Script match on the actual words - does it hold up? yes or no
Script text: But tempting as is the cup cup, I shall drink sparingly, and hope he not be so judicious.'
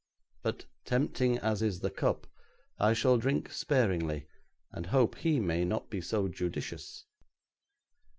no